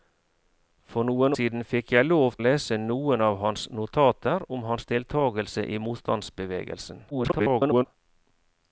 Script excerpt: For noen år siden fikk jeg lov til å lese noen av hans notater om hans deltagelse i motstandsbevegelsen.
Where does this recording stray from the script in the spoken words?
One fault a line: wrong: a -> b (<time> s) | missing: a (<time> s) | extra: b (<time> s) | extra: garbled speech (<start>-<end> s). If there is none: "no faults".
missing: år (1.4 s)
missing: til (2.4 s)
extra: garbled speech (7.1-7.9 s)